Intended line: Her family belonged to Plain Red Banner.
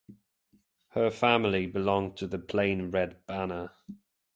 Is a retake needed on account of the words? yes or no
yes